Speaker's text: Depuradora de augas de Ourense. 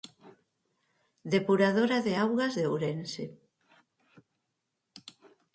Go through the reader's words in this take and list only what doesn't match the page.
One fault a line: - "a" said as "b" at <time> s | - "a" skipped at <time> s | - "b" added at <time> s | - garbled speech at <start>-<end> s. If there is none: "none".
none